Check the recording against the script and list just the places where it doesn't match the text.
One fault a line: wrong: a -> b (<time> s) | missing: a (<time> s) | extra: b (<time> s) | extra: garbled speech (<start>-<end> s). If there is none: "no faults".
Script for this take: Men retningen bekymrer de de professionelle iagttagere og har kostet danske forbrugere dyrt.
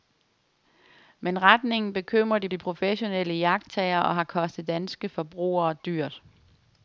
no faults